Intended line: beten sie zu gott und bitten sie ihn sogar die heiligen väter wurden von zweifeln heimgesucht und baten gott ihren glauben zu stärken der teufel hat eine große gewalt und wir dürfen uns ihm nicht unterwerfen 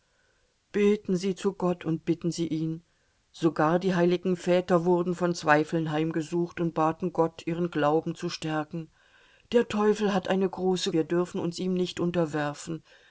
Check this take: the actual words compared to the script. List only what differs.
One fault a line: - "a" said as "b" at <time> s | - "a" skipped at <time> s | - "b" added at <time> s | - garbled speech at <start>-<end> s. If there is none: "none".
- "gewalt und" skipped at 10.9 s